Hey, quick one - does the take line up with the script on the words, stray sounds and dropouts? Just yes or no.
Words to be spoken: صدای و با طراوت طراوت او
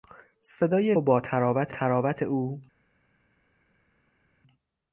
yes